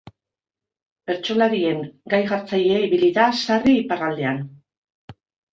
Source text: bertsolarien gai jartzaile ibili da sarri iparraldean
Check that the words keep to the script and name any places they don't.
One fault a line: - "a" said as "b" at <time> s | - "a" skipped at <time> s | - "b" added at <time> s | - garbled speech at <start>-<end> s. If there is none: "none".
none